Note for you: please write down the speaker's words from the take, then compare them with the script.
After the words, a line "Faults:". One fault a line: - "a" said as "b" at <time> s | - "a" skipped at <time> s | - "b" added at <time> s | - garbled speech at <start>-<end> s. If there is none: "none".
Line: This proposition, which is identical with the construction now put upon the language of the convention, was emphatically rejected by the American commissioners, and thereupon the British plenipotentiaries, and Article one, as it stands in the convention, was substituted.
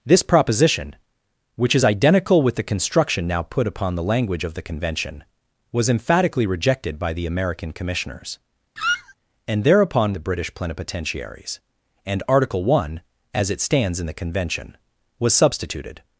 This proposition, which is identical with the construction now put upon the language of the convention, was emphatically rejected by the American commissioners, and thereupon the British plenipotentiaries, and Article one, as it stands in the convention, was substituted.
Faults:
none